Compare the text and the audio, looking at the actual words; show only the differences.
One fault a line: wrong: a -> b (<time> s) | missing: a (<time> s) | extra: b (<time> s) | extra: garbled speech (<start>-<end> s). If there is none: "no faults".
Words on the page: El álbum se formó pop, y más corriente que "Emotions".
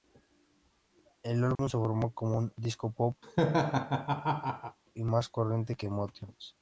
extra: como un disco (2.1 s)